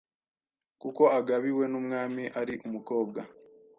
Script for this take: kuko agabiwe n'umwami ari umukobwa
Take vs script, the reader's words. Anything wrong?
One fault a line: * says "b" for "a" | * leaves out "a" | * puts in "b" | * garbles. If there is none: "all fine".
all fine